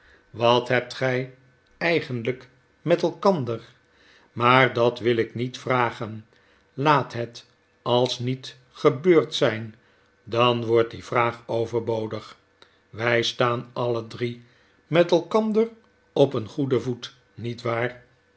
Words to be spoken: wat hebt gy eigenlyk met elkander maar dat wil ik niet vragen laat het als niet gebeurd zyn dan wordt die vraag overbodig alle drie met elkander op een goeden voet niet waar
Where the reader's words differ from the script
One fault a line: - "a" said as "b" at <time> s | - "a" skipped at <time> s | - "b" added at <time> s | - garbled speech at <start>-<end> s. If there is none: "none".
- "wy staan" added at 12.9 s